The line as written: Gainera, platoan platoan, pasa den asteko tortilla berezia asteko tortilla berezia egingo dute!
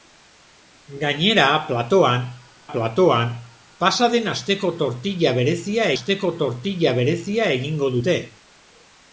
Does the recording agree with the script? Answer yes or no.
yes